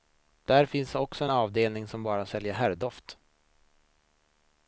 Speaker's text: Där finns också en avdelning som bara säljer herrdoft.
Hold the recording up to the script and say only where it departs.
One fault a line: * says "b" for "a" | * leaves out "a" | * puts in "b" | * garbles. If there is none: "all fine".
* leaves out "en"